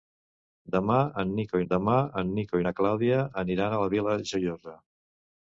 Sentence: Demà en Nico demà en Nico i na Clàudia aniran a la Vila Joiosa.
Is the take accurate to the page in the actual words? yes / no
yes